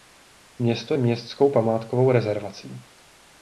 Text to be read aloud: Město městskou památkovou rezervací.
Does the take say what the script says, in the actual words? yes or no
yes